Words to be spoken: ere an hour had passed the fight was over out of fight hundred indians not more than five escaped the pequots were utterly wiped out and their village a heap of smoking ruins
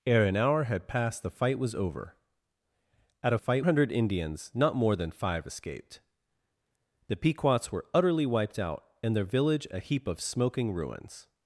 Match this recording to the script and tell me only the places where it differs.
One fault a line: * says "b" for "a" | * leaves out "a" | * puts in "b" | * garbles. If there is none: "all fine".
all fine